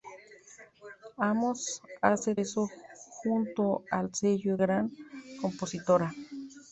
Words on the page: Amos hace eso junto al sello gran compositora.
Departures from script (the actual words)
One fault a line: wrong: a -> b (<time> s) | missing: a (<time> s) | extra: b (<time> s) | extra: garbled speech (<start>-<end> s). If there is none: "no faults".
no faults